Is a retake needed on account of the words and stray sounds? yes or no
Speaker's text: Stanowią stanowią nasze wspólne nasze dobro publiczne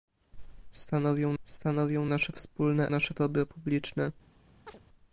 yes